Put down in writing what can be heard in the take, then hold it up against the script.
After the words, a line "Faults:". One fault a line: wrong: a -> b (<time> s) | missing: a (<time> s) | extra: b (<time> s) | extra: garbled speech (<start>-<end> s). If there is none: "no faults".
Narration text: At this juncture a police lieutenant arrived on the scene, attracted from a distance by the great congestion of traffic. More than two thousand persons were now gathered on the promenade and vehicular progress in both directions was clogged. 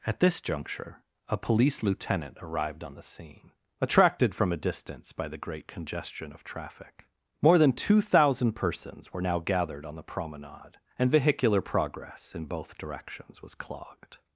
At this juncture a police lieutenant arrived on the scene, attracted from a distance by the great congestion of traffic. More than two thousand persons were now gathered on the promenade and vehicular progress in both directions was clogged.
Faults:
no faults